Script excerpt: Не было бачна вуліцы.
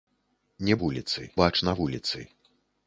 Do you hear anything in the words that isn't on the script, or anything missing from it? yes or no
yes